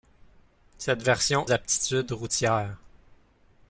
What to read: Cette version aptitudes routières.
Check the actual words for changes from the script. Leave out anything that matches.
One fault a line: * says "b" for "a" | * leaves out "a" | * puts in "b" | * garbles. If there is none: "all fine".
all fine